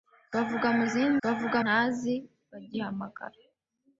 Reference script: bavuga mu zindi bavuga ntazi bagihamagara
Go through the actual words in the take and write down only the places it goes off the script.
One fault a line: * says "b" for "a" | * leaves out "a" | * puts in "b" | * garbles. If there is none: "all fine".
all fine